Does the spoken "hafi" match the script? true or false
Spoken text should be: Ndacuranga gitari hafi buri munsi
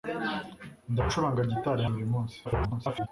false